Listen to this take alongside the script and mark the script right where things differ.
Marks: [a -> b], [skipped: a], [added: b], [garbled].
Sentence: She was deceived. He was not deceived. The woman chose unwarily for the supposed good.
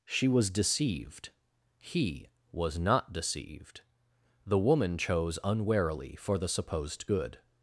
She was deceived. He was not deceived. The woman chose unwarily for the supposed good.